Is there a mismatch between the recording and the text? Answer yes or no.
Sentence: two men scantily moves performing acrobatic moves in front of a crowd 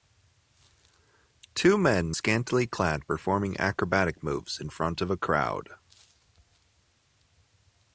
yes